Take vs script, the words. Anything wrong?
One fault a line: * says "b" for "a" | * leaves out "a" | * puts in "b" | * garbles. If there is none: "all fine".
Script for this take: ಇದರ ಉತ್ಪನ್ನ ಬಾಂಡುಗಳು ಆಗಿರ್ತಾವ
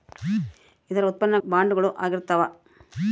all fine